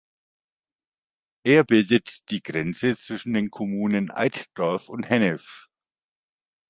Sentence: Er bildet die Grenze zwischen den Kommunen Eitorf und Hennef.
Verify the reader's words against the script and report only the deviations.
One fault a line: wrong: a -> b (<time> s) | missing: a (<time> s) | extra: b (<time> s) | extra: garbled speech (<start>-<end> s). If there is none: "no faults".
no faults